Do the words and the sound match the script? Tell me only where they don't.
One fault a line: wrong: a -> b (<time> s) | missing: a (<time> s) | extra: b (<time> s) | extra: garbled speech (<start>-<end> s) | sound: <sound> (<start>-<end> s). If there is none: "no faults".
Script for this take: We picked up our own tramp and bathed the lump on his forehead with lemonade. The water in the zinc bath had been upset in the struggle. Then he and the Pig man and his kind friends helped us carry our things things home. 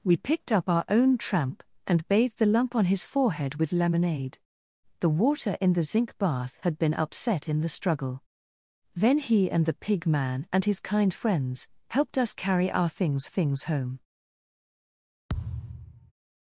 sound: thud (15.3-16.1 s)